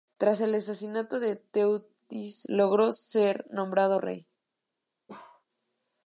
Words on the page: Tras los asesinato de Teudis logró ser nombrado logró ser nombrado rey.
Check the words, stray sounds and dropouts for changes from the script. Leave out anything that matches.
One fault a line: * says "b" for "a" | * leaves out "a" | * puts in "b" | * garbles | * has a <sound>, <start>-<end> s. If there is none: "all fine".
* says "el" for "los"
* leaves out "logró ser nombrado"
* has a bark, 5.1-5.4 s